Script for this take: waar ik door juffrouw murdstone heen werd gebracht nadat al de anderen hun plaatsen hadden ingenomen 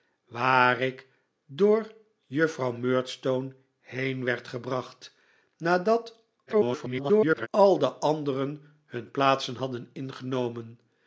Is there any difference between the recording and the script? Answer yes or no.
yes